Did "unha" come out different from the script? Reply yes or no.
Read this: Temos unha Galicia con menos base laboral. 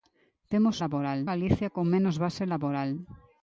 yes